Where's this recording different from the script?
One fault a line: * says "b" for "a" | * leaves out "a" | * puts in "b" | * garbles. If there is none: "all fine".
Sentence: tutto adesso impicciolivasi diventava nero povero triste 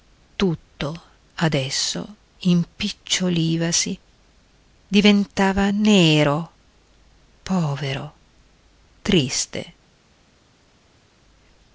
all fine